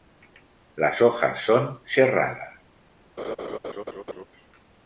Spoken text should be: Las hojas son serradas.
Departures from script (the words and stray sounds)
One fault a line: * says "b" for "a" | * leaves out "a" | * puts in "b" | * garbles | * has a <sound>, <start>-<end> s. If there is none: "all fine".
* has a laugh, 3.2-4.2 s